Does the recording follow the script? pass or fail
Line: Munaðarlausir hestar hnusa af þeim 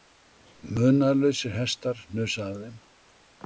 pass